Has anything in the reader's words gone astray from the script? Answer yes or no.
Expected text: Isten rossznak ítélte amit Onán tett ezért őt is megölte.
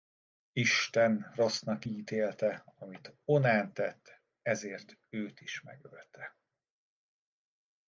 no